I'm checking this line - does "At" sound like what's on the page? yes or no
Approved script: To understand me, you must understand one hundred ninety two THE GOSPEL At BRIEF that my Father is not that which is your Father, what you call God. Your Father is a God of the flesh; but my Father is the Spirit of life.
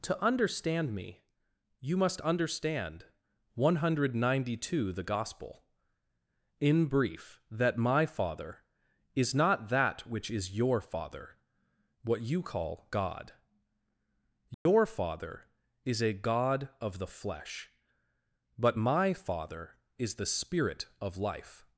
no